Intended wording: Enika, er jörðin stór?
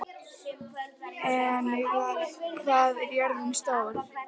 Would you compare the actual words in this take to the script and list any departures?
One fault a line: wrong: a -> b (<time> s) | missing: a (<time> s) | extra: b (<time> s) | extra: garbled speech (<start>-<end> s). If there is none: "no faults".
extra: hvað (2.6 s)